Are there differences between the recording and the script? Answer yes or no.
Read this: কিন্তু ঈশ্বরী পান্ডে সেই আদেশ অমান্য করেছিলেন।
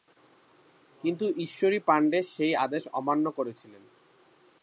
no